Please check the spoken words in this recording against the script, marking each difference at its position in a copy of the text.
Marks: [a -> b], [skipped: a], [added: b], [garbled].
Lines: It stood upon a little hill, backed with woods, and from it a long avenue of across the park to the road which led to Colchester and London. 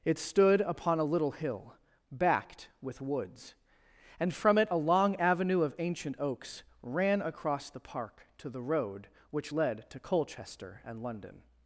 It stood upon a little hill, backed with woods, and from it a long avenue of [added: ancient oaks ran] across the park to the road which led to Colchester and London.